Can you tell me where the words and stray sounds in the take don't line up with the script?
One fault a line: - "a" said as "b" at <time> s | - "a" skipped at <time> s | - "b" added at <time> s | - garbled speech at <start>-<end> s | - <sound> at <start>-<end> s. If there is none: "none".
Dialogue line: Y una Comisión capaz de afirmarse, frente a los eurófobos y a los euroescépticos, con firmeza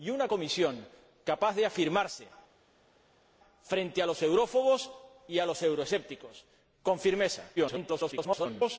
- garbled speech at 7.6-8.8 s